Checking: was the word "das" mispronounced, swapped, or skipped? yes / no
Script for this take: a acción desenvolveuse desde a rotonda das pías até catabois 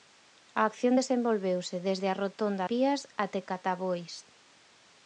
yes